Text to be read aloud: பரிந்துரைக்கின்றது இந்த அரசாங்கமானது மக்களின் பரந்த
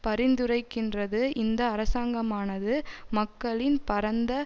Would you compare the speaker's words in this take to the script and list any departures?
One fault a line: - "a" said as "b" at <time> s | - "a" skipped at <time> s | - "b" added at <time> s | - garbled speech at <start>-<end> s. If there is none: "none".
none